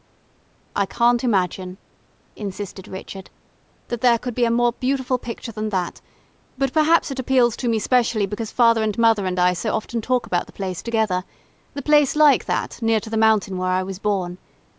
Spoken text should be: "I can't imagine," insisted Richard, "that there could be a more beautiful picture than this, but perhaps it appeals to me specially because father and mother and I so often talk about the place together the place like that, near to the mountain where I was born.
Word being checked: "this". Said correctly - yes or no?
no